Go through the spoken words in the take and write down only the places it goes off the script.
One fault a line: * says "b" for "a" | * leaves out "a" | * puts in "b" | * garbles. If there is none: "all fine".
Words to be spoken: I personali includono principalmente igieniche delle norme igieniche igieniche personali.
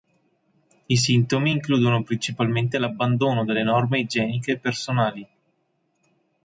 * says "sintomi" for "personali"
* says "l'abbandono" for "igieniche"
* leaves out "igieniche"